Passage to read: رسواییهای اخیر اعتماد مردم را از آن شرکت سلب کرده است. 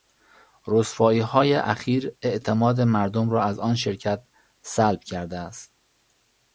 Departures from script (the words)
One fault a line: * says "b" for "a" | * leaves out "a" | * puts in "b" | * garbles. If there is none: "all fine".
all fine